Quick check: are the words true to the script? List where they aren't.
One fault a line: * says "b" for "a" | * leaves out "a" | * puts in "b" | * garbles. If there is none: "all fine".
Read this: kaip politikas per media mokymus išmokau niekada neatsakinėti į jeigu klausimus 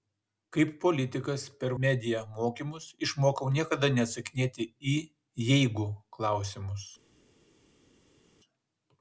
all fine